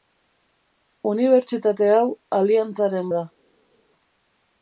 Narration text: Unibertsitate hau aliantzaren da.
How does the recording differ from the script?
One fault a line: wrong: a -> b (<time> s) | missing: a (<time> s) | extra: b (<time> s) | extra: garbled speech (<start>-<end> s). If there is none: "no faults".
no faults